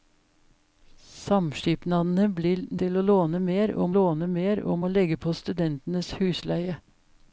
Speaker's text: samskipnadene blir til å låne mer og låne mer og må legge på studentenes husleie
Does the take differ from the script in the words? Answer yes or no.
no